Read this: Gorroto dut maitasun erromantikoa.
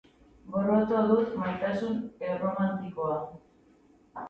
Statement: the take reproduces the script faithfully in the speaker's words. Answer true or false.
true